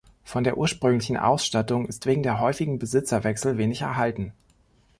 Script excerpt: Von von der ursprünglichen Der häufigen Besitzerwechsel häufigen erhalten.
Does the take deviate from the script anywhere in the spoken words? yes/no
yes